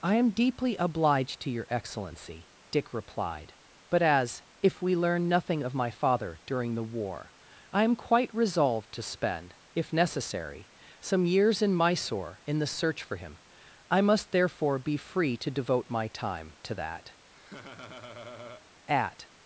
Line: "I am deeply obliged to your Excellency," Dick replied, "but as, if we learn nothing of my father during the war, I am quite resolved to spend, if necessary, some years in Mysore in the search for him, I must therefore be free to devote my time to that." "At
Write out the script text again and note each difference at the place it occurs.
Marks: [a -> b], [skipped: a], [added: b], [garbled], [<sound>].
"I am deeply obliged to your Excellency," Dick replied, "but as, if we learn nothing of my father during the war, I am quite resolved to spend, if necessary, some years in Mysore in the search for him, I must therefore be free to devote my time to that." [laugh] "At